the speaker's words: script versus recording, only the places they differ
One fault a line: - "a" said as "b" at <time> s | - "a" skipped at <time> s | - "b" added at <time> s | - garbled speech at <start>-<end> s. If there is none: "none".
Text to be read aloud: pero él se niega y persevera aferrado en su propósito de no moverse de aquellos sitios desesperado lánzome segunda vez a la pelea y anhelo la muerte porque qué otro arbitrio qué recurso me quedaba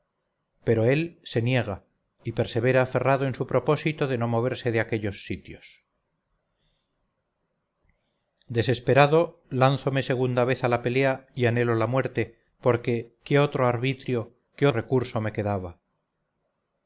none